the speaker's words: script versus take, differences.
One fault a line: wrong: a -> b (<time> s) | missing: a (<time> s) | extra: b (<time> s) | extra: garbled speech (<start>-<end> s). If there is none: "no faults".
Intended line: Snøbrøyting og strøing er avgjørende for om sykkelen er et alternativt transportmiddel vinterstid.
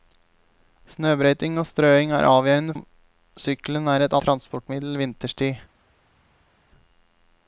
missing: for (2.8 s)
missing: alternativt (4.1 s)